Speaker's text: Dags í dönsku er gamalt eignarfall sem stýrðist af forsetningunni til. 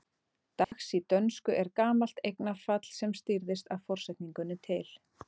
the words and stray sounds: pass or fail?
fail